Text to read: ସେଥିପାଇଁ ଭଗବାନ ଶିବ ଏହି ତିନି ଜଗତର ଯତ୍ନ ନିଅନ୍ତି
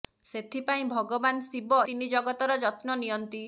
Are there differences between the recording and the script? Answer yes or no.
yes